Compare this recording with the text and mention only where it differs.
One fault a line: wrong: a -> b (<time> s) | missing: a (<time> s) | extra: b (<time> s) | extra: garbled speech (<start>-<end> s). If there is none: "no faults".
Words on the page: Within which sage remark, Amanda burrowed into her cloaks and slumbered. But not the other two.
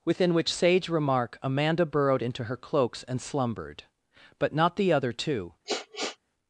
no faults